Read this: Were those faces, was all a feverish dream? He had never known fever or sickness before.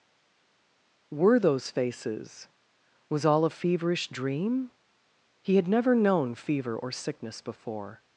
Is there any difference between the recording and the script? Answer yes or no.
no